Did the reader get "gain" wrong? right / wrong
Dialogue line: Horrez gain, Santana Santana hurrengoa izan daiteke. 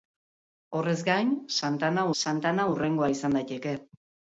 right